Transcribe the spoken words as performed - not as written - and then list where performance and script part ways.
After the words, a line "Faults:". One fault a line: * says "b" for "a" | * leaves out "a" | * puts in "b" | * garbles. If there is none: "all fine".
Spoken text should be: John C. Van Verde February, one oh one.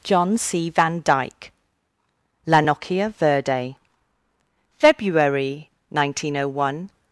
John C. Van Dyke. La Nokia Verde February, nineteen oh one.
Faults:
* puts in "Dyke La Nokia"
* says "nineteen" for "one"